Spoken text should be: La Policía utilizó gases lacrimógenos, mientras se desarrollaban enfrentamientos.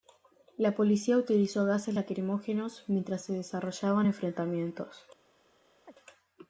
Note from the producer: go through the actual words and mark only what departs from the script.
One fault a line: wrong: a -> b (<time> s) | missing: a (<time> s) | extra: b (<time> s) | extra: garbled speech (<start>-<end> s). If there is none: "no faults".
no faults